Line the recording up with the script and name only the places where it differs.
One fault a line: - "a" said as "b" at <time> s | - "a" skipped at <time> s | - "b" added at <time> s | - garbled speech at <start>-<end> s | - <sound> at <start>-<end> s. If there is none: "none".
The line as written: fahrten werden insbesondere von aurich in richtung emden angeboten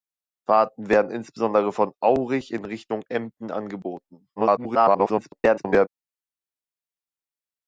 - garbled speech at 4.4-5.9 s